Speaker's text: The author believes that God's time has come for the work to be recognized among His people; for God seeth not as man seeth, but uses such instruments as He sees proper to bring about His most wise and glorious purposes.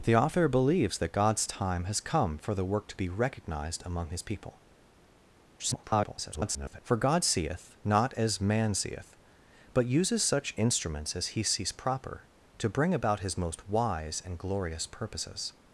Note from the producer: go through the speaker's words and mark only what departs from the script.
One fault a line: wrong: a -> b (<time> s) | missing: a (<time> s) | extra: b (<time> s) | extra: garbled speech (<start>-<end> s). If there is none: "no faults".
extra: garbled speech (5.6-6.8 s)